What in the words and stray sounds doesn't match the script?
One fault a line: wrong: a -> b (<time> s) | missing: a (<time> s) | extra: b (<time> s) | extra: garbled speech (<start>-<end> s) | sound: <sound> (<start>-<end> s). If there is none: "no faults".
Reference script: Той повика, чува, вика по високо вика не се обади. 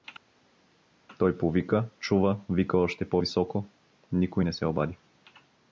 extra: още (2.8 s)
wrong: вика -> никой (4.1 s)